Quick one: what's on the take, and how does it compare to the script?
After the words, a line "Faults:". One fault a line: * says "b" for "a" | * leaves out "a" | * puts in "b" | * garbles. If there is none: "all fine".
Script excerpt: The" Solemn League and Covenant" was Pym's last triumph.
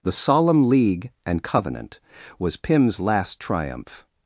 The" Solemn League and Covenant" was Pym's last triumph.
Faults:
all fine